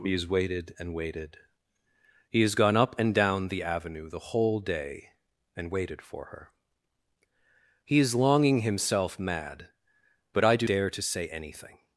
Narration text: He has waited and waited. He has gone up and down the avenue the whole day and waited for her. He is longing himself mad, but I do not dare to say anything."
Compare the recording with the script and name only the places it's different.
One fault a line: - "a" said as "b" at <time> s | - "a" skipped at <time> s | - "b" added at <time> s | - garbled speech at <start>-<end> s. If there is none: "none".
- "not" skipped at 10.7 s